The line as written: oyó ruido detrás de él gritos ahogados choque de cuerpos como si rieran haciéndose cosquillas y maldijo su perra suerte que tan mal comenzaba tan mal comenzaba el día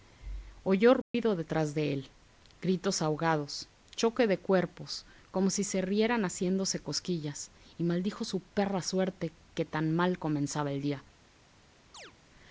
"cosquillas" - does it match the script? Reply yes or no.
yes